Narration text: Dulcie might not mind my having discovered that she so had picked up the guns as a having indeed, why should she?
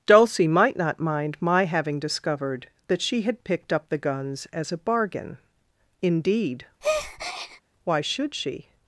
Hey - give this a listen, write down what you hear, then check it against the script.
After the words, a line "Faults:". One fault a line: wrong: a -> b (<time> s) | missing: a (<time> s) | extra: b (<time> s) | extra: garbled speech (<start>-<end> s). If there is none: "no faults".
Dulcie might not mind my having discovered that she had picked up the guns as a bargain indeed, why should she?
Faults:
missing: so (3.2 s)
wrong: having -> bargain (4.8 s)